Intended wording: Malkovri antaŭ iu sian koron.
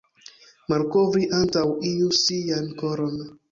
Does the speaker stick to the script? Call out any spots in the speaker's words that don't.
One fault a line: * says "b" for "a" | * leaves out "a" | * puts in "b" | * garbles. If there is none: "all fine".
all fine